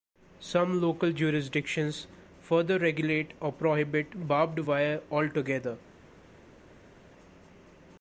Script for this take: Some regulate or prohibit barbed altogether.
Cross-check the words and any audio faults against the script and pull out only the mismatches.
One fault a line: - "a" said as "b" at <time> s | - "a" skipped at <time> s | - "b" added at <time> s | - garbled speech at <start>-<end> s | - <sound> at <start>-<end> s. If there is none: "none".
- "local jurisdictions further" added at 0.8 s
- "wire" added at 4.7 s